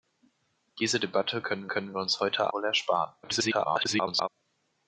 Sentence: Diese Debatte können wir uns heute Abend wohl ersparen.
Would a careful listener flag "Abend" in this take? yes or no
yes